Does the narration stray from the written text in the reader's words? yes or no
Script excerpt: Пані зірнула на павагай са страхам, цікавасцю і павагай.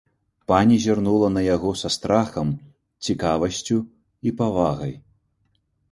yes